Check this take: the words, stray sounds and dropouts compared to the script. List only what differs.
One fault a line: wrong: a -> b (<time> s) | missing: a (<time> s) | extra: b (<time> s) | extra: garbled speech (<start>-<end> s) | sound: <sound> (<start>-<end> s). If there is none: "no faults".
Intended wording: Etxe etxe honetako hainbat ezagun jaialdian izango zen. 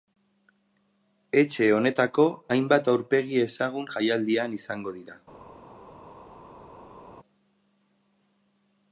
missing: etxe (1.7 s)
extra: aurpegi (2.9 s)
wrong: zen -> dira (5.0 s)